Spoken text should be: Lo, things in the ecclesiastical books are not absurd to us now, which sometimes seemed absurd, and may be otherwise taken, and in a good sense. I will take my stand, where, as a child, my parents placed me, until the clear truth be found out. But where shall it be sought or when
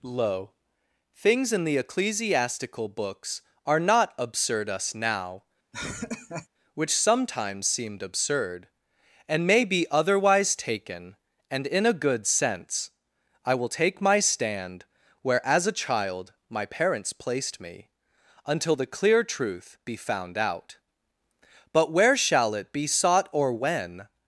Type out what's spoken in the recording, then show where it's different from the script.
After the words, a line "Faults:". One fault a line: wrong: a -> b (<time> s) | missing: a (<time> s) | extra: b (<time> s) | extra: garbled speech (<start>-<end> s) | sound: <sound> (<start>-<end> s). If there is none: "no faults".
Lo, things in the ecclesiastical books are not absurd us now, which sometimes seemed absurd, and may be otherwise taken, and in a good sense. I will take my stand, where, as a child, my parents placed me, until the clear truth be found out. But where shall it be sought or when
Faults:
missing: to (4.7 s)
sound: laugh (5.7-6.5 s)